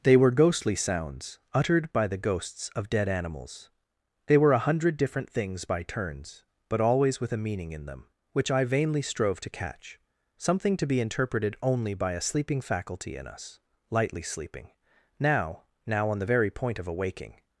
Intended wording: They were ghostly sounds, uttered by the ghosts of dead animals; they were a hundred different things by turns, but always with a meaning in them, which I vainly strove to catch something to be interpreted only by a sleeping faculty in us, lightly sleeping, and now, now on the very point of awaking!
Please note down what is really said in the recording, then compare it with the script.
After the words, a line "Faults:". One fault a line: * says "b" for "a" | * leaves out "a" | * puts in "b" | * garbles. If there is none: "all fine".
They were ghostly sounds, uttered by the ghosts of dead animals; they were a hundred different things by turns, but always with a meaning in them, which I vainly strove to catch something to be interpreted only by a sleeping faculty in us, lightly sleeping, now, now on the very point of awaking!
Faults:
* leaves out "and"